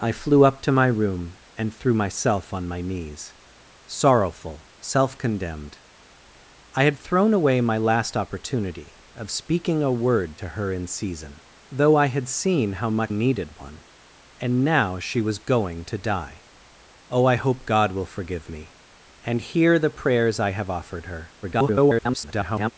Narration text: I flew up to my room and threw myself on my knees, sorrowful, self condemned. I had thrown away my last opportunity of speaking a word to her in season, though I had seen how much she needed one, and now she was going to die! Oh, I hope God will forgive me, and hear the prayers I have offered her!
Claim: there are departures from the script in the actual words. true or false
true